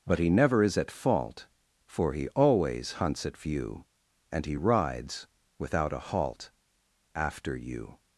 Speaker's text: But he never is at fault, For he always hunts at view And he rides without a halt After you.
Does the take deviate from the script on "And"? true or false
false